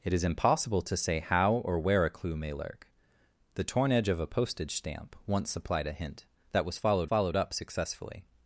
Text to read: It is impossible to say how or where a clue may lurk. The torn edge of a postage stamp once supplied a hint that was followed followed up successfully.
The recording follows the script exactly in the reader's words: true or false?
true